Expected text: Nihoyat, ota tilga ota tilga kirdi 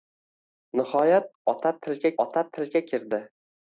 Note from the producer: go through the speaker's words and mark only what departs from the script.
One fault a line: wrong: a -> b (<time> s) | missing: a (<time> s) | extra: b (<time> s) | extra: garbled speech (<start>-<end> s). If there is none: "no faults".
no faults